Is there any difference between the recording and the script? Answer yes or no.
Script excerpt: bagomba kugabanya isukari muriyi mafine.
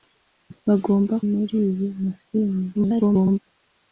yes